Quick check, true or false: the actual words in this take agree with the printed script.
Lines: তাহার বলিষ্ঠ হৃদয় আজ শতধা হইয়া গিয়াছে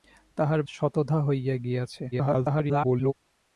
false